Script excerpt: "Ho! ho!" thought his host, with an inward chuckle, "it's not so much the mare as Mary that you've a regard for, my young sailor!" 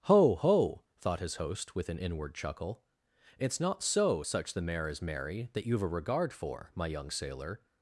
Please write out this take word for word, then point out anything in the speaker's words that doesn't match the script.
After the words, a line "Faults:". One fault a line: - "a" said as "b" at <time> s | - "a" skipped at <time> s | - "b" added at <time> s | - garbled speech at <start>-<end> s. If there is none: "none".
"Ho! ho!" thought his host, with an inward chuckle, "it's not so such the mare as Mary that you've a regard for, my young sailor!"
Faults:
- "much" said as "such" at 4.2 s